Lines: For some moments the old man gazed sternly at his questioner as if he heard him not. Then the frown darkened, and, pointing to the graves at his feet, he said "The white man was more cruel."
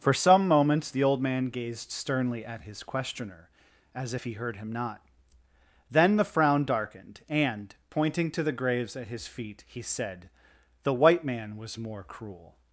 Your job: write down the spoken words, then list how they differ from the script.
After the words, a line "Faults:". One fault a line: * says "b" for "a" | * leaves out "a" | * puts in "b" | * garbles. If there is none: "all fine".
For some moments the old man gazed sternly at his questioner as if he heard him not. Then the frown darkened, and, pointing to the graves at his feet, he said "The white man was more cruel."
Faults:
all fine